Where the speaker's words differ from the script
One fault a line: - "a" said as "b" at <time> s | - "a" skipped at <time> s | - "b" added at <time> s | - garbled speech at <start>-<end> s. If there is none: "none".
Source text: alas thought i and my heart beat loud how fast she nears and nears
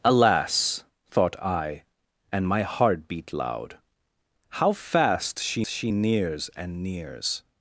- "she" added at 5.7 s